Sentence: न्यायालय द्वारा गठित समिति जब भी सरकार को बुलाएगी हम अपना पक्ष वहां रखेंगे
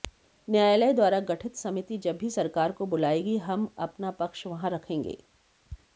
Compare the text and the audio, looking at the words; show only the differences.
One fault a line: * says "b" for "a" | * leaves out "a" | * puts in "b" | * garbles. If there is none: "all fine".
all fine